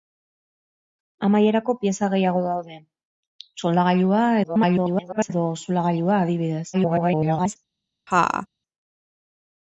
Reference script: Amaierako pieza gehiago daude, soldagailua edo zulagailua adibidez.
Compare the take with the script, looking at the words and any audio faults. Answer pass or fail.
fail